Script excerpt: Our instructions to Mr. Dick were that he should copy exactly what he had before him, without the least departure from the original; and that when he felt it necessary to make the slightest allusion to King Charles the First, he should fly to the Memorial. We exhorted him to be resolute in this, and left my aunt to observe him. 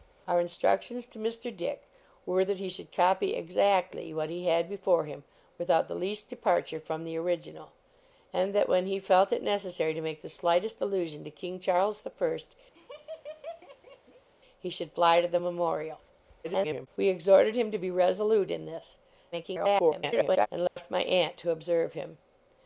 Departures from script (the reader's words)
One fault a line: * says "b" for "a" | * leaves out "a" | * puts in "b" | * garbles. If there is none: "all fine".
* garbles
* garbles